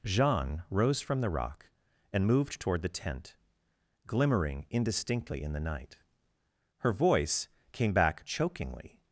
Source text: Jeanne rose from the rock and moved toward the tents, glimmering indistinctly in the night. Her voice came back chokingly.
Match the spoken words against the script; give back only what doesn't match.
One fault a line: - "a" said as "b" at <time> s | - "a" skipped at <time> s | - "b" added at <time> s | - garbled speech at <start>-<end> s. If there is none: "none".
- "tents" said as "tent" at 2.9 s